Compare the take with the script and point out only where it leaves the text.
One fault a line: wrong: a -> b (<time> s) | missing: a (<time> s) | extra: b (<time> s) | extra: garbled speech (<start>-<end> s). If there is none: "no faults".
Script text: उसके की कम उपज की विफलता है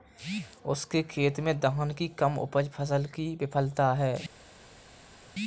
extra: खेत में धान (1.0 s)
extra: फसल (2.7 s)